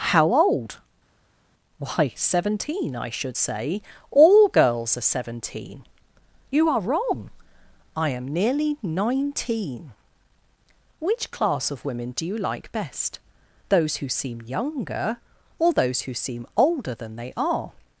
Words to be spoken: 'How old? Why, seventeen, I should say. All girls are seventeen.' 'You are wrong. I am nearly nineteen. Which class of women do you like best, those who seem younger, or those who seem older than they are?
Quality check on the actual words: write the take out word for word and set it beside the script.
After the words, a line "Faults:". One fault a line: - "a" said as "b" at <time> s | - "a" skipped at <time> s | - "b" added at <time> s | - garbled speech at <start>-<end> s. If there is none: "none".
'How old? Why, seventeen, I should say. All girls are seventeen.' 'You are wrong. I am nearly nineteen. Which class of women do you like best, those who seem younger, or those who seem older than they are?
Faults:
none